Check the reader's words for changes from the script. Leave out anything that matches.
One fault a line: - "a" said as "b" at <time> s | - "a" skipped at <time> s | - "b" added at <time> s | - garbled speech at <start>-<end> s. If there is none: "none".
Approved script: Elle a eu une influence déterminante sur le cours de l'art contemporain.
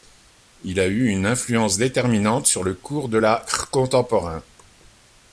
- "Elle" said as "Il" at 0.6 s